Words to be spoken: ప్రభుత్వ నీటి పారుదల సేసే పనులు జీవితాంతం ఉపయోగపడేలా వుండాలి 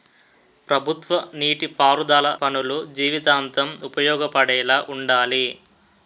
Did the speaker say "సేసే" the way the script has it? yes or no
no